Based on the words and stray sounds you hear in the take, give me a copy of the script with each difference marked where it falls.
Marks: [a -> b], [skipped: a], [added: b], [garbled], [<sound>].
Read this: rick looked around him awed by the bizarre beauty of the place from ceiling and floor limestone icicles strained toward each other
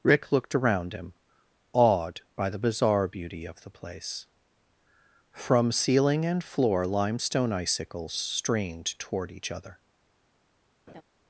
rick looked around him awed by the bizarre beauty of the place from ceiling and floor limestone icicles strained toward each other [laugh]